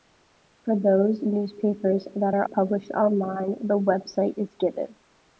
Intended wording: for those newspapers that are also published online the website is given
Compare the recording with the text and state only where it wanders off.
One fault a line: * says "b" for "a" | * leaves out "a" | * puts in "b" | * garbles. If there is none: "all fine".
* leaves out "also"